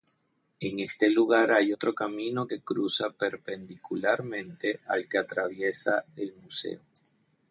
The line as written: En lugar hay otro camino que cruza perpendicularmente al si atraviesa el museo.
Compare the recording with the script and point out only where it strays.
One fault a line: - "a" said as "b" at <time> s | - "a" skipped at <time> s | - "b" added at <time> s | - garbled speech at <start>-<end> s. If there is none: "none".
- "este" added at 0.8 s
- "si" said as "que" at 5.1 s